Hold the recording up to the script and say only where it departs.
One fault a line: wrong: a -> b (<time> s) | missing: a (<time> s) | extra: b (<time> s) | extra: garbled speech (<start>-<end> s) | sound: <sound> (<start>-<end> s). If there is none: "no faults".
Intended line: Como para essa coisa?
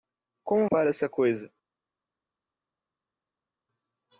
no faults